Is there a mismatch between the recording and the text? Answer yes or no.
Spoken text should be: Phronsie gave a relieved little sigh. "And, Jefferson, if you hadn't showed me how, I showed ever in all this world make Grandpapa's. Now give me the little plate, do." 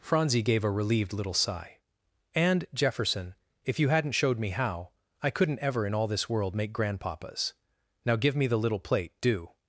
yes